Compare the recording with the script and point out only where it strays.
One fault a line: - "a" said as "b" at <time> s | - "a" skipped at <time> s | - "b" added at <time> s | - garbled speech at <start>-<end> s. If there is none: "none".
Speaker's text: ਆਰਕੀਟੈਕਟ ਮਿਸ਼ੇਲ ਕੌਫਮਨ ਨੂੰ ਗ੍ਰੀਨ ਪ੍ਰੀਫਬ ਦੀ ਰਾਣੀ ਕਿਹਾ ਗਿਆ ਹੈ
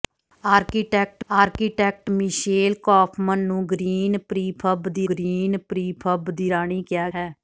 - "ਆਰਕੀਟੈਕਟ" added at 1.3 s
- "ਗ੍ਰੀਨ ਪ੍ਰੀਫਬ ਦੀ" added at 5.0 s
- "ਗਿਆ" skipped at 7.1 s